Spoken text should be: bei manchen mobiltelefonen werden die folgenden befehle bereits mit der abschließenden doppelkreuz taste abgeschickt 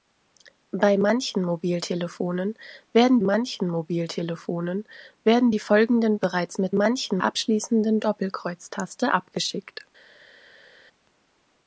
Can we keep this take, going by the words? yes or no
no